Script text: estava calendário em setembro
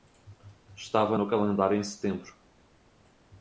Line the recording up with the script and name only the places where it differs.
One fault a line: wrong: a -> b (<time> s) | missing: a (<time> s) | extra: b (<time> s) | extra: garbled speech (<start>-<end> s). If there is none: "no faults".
extra: no (1.1 s)